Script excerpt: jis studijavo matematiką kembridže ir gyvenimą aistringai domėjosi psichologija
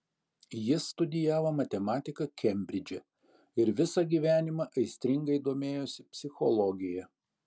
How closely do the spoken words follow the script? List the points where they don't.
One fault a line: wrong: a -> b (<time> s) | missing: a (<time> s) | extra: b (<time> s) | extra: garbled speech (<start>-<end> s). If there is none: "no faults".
extra: visą (3.8 s)